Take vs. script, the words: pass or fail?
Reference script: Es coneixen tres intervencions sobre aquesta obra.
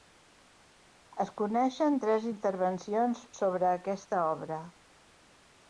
pass